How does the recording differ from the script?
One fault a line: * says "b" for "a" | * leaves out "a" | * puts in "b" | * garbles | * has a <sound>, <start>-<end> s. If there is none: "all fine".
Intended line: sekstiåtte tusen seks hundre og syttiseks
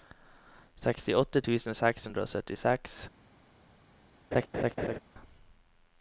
* has a laugh, 4.3-5.0 s